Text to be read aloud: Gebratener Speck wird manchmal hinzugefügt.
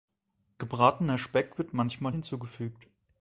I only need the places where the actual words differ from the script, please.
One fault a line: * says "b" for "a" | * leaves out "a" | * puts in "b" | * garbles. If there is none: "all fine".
all fine